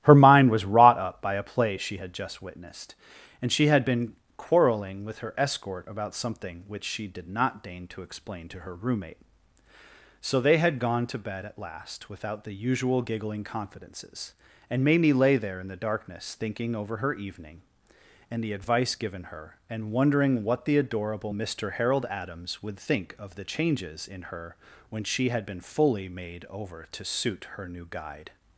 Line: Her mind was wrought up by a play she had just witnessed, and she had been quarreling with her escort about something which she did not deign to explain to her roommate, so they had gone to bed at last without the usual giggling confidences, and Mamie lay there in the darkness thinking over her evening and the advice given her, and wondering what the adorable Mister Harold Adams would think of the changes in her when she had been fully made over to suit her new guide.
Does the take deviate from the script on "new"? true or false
false